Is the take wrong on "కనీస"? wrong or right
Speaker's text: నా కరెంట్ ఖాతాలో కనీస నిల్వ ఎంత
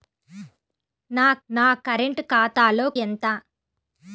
wrong